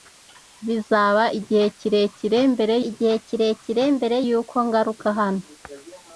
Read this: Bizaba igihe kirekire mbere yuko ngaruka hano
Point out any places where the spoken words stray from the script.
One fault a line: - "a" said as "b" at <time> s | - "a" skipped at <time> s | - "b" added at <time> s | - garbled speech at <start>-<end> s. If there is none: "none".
- "igihe kirekire mbere" added at 2.9 s